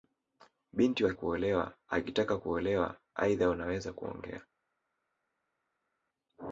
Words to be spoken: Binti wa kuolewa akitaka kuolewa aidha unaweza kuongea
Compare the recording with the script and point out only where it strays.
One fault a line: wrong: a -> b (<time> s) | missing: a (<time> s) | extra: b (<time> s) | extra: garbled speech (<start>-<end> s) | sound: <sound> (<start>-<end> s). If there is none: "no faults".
no faults